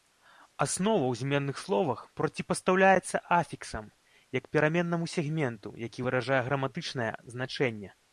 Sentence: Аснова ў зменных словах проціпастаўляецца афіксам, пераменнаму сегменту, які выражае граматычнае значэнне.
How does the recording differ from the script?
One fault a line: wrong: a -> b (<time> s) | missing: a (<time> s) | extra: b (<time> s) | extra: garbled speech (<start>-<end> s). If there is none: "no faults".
extra: як (4.4 s)